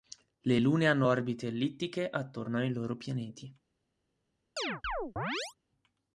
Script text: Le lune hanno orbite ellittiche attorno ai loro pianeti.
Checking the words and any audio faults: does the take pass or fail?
fail